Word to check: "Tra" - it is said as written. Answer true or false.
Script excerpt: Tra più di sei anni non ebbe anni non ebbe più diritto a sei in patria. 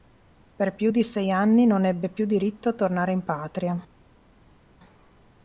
false